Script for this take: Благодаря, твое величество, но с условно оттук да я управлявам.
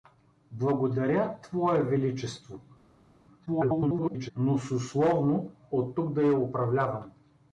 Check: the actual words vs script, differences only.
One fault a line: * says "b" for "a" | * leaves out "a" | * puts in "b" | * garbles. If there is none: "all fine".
* garbles